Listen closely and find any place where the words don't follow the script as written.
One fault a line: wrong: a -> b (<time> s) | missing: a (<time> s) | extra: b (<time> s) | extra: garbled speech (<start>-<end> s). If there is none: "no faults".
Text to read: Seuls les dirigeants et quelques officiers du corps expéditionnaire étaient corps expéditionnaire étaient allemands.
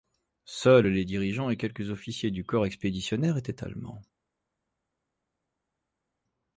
missing: corps expéditionnaire étaient (3.6 s)